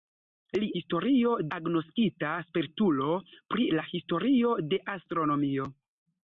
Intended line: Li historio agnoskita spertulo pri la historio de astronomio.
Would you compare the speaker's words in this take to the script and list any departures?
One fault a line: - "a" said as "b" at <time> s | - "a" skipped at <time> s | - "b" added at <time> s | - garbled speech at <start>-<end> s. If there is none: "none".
none